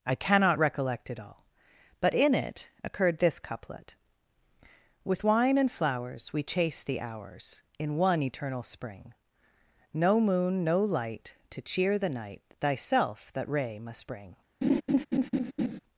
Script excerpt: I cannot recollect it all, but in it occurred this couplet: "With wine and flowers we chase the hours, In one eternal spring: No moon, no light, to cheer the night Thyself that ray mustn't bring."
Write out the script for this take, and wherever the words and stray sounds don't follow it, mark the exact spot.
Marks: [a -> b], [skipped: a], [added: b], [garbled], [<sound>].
I cannot recollect it all, but in it occurred this couplet: "With wine and flowers we chase the hours, In one eternal spring: No moon, no light, to cheer the night Thyself that ray [mustn't -> must] bring." [laugh]